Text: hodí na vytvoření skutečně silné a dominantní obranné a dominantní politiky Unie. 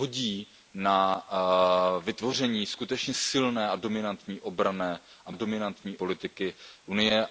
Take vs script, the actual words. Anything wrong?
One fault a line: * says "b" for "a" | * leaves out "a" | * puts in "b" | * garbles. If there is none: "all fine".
all fine